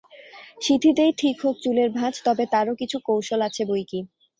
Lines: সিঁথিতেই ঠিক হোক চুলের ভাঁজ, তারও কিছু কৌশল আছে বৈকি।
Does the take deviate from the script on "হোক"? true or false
false